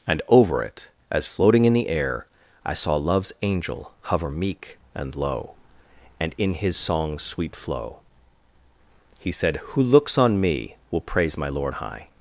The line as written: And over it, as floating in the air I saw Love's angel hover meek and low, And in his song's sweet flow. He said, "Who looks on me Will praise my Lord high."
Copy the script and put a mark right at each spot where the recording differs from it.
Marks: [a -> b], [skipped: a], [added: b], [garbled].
And over it, as floating in the air I saw Love's angel hover meek and low, And in his song's sweet flow. He said, "Who looks on me Will praise my Lord high."